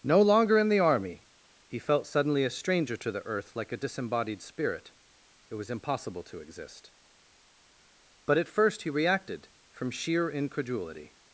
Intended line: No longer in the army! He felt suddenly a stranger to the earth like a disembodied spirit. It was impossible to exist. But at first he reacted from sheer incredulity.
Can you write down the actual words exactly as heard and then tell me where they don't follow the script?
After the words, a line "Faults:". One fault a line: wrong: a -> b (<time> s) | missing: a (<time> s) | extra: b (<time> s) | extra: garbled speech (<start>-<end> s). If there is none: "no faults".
No longer in the army! He felt suddenly a stranger to the earth like a disembodied spirit. It was impossible to exist. But at first he reacted from sheer incredulity.
Faults:
no faults